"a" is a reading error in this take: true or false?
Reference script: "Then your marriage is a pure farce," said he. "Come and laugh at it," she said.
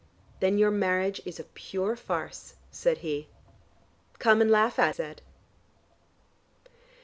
false